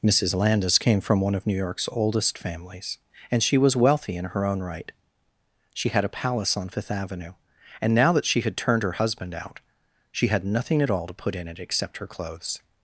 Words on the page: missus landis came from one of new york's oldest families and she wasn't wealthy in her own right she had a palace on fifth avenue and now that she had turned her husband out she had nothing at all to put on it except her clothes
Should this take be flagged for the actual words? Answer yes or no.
yes